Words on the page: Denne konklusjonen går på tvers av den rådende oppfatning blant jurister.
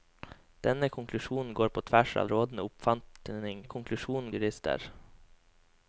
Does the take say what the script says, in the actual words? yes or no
no